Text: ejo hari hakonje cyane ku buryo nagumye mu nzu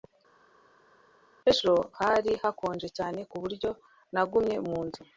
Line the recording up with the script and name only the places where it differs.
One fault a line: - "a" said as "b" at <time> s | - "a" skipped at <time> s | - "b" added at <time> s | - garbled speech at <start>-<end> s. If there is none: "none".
none